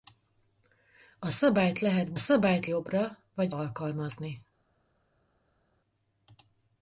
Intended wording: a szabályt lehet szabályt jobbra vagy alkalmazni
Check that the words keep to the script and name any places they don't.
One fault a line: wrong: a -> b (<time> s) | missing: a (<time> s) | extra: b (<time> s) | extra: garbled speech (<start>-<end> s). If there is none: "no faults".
no faults